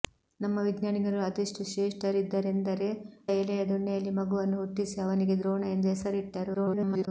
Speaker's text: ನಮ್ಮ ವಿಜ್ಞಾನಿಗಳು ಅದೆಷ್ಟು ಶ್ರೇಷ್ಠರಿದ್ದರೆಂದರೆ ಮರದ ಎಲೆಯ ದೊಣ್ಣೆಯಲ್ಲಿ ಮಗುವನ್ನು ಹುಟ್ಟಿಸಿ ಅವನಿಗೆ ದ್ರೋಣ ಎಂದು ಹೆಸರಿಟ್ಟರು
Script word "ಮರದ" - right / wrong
wrong